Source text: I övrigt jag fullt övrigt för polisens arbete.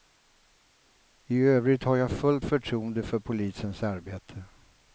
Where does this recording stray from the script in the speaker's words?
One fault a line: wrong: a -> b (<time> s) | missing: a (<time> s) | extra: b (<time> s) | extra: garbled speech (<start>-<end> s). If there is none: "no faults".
extra: har (1.8 s)
wrong: övrigt -> förtroende (2.4 s)